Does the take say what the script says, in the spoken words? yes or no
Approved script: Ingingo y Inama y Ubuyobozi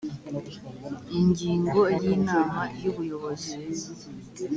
yes